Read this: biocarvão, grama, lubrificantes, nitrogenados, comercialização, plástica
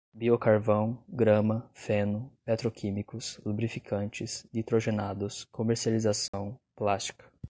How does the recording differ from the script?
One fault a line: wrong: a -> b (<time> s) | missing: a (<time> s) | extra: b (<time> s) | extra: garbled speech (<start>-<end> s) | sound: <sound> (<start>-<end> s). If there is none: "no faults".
extra: feno petroquímicos (1.7 s)
sound: dropout (6.3-6.3 s)